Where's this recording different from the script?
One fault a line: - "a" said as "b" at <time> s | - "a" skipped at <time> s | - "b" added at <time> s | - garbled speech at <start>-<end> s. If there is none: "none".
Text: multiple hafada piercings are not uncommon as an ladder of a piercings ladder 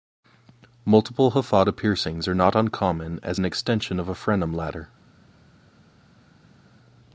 - "ladder" said as "extension" at 3.5 s
- "piercings" said as "frenum" at 4.1 s